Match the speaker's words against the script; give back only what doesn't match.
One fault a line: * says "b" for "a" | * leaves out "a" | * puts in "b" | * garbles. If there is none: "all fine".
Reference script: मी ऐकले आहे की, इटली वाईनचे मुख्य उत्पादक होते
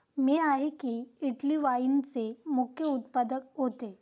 * leaves out "ऐकले"